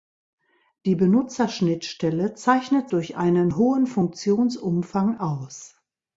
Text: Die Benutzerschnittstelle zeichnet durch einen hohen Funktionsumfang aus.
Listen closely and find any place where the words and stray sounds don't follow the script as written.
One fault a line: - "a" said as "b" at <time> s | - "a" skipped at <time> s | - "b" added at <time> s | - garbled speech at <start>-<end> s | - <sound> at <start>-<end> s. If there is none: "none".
none